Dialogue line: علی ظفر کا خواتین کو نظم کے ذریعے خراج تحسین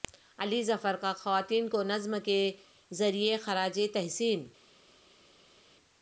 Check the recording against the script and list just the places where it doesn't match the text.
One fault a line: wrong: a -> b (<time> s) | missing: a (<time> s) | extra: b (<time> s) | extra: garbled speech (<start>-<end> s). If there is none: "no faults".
no faults